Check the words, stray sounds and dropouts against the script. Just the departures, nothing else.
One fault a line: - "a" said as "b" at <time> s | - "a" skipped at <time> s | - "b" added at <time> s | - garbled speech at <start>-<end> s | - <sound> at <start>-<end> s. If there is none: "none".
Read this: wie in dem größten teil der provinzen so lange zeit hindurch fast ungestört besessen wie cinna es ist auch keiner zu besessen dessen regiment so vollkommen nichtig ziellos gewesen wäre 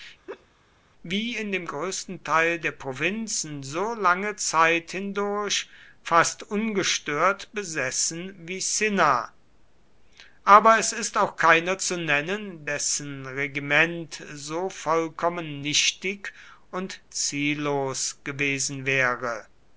- laugh at 0.3-0.5 s
- "aber" added at 10.4 s
- "besessen" said as "nennen" at 12.0 s
- "und" added at 16.7 s